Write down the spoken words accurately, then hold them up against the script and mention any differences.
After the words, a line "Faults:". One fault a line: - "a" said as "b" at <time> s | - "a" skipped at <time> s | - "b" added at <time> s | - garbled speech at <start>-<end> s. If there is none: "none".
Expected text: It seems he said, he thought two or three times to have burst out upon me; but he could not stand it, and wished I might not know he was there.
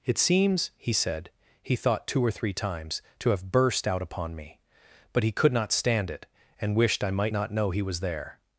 It seems he said, he thought two or three times to have burst out upon me; but he could not stand it, and wished I might not know he was there.
Faults:
none